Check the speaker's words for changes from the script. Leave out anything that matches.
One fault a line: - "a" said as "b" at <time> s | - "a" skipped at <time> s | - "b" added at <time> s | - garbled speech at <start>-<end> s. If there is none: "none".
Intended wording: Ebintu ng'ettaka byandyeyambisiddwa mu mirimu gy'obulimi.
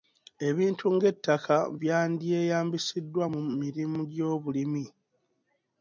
none